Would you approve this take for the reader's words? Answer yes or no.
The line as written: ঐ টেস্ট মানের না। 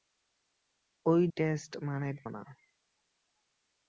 yes